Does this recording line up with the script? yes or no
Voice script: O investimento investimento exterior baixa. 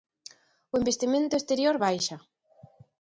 no